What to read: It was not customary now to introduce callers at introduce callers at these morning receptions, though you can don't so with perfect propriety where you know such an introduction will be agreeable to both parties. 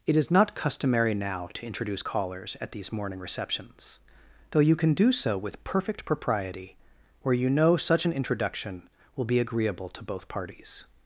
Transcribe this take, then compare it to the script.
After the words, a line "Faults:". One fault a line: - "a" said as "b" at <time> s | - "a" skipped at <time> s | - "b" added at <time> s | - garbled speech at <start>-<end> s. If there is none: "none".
It is not customary now to introduce callers at these morning receptions, though you can do so with perfect propriety where you know such an introduction will be agreeable to both parties.
Faults:
- "was" said as "is" at 0.2 s
- "introduce callers at" skipped at 2.7 s
- "don't" said as "do" at 4.9 s